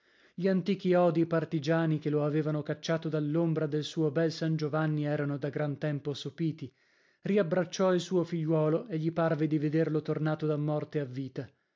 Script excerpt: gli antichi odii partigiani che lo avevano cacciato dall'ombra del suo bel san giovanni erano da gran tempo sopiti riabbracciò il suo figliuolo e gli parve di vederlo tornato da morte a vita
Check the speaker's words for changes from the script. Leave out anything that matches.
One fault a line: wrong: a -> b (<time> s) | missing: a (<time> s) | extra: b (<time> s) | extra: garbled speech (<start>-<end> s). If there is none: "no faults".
no faults